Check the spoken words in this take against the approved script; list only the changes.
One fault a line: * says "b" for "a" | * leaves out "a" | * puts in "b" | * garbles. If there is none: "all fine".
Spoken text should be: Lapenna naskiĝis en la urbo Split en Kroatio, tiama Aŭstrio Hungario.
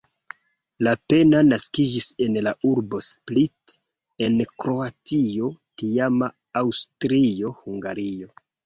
all fine